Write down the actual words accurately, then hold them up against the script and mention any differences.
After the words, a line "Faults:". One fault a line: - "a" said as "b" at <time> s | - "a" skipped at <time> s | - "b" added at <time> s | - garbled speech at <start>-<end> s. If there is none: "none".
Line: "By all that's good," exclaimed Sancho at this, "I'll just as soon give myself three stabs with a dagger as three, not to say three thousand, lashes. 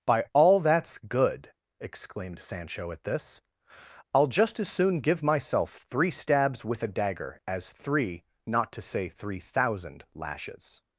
"By all that's good," exclaimed Sancho at this, "I'll just as soon give myself three stabs with a dagger as three, not to say three thousand, lashes.
Faults:
none